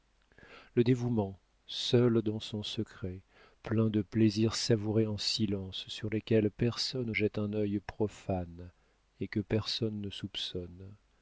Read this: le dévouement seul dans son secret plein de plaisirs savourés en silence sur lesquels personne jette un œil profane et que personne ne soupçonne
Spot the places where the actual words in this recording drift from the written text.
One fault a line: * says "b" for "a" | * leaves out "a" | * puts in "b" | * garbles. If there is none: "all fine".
all fine